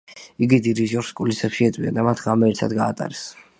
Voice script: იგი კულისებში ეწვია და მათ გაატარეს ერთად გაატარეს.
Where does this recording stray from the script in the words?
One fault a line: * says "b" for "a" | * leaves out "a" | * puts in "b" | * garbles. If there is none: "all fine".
* puts in "დირიჟორს"
* says "ღამე" for "გაატარეს"